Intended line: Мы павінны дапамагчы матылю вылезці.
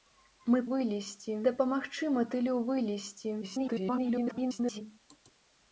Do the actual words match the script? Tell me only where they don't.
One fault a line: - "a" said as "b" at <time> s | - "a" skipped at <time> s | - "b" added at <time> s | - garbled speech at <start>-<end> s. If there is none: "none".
- "павінны" said as "вылезці" at 0.7 s
- garbled speech at 3.4-4.8 s